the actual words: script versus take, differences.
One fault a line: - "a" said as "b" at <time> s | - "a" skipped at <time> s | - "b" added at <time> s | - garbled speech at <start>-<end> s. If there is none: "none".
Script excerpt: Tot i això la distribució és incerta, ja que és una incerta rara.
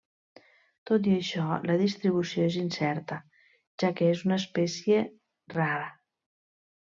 - "incerta" said as "espècie" at 4.5 s